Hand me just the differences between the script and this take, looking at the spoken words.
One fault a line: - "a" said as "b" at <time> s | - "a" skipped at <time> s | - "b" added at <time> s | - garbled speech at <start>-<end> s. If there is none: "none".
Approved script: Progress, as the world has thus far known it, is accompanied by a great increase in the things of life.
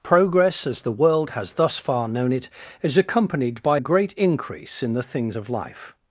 - "a" skipped at 3.8 s